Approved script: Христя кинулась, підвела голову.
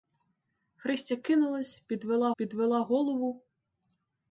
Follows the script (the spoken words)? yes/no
no